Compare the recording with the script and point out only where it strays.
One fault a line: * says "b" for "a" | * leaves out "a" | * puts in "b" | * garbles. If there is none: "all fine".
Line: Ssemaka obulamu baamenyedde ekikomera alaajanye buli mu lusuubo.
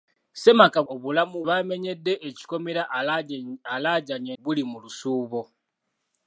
all fine